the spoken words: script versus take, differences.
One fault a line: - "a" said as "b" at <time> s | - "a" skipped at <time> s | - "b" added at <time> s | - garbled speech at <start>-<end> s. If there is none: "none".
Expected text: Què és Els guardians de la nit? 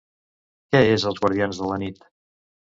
none